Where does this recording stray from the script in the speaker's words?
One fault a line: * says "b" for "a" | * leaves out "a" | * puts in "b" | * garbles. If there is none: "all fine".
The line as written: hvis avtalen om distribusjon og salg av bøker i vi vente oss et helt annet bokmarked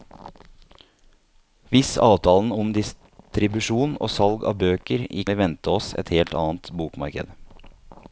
all fine